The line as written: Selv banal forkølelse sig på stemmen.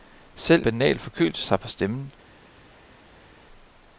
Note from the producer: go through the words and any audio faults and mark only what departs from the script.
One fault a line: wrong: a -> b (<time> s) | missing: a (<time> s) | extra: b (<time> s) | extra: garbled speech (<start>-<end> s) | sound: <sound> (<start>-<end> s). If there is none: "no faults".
no faults